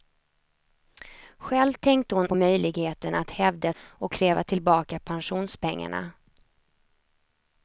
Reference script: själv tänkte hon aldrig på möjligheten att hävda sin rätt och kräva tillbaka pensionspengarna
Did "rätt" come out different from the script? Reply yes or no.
yes